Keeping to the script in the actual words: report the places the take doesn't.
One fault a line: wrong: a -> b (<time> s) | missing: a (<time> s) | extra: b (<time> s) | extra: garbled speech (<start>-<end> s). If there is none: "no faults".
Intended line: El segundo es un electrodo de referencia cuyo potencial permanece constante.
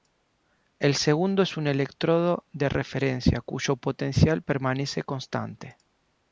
no faults